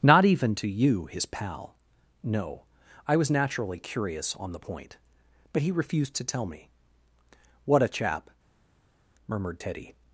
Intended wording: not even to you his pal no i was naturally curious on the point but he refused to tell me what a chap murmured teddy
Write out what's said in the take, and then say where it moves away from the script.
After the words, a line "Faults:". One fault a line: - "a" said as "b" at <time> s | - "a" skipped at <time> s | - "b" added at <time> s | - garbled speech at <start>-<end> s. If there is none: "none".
not even to you his pal no i was naturally curious on the point but he refused to tell me what a chap murmured teddy
Faults:
none